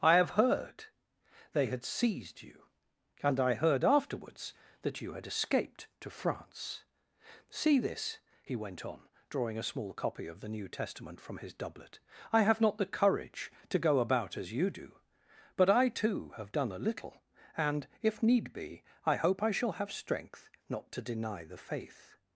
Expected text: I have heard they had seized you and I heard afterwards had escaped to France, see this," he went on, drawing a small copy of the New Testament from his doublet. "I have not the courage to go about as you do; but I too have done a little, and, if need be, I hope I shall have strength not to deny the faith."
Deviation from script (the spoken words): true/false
true